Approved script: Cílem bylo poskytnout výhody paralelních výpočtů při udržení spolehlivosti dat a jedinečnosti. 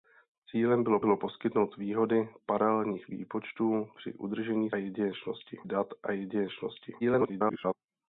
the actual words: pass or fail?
fail